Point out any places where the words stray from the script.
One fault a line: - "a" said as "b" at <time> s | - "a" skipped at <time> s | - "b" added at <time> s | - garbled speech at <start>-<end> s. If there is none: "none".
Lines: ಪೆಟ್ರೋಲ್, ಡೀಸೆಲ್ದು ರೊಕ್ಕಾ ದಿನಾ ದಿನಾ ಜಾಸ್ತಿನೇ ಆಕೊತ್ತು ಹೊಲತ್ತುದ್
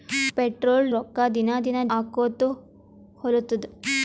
- "ಡೀಸೆಲ್ದು" skipped at 0.9 s
- "ಜಾಸ್ತಿನೇ" skipped at 1.8 s